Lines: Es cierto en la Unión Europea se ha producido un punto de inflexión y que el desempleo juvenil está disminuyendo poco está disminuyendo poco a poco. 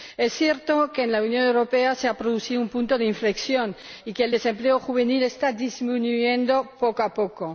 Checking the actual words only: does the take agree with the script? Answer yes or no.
no